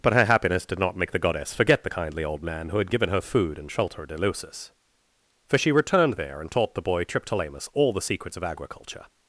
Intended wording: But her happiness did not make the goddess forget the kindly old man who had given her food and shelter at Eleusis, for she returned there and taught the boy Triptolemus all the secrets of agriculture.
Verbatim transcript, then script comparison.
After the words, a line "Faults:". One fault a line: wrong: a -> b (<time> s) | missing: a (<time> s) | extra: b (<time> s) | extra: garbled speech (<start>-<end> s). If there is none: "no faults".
But her happiness did not make the goddess forget the kindly old man who had given her food and shelter at Eleusis, for she returned there and taught the boy Triptolemus all the secrets of agriculture.
Faults:
no faults